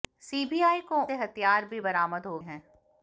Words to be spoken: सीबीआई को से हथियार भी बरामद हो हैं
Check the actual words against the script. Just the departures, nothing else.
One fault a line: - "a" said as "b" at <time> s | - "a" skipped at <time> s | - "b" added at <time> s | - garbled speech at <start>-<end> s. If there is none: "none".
none